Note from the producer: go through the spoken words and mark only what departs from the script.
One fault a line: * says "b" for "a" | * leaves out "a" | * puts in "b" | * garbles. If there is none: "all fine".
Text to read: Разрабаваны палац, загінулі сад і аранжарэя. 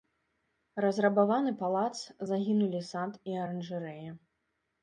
all fine